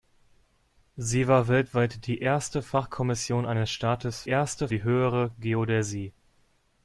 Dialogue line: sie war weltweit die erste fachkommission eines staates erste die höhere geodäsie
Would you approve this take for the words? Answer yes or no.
yes